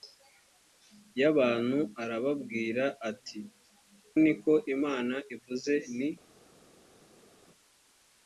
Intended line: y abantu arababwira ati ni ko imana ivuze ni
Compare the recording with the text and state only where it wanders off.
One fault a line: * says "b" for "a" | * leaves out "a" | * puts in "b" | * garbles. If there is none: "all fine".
all fine